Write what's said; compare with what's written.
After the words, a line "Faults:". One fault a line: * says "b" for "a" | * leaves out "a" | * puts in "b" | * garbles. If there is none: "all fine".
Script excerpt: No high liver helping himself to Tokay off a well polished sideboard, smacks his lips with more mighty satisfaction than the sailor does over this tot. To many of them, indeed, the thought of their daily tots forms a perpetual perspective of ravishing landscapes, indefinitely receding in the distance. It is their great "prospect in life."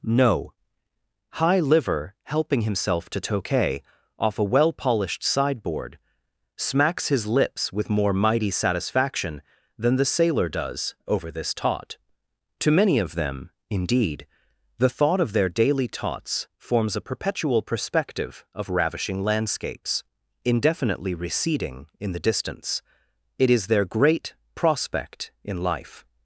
No high liver helping himself to Tokay off a well polished sideboard, smacks his lips with more mighty satisfaction than the sailor does over this tot. To many of them, indeed, the thought of their daily tots forms a perpetual perspective of ravishing landscapes, indefinitely receding in the distance. It is their great "prospect in life."
Faults:
all fine